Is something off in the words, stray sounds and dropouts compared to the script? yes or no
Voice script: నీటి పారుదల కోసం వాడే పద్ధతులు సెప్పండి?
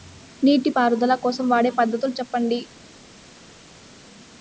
no